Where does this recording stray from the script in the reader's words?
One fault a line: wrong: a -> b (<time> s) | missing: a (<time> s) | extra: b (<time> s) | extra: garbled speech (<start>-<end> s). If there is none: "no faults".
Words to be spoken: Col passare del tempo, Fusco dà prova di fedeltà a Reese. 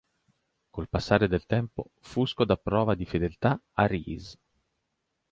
no faults